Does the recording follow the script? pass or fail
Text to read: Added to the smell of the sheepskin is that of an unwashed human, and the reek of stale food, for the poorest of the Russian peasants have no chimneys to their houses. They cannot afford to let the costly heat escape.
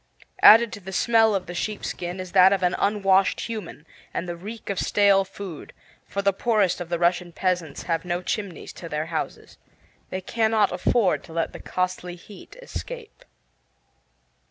pass